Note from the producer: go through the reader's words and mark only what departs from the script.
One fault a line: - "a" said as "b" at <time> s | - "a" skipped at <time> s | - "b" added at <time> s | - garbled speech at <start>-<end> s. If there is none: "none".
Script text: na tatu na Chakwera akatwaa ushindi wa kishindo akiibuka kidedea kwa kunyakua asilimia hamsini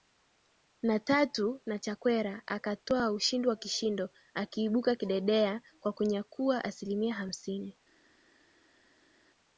none